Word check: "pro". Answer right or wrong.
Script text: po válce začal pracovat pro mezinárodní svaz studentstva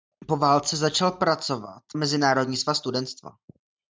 wrong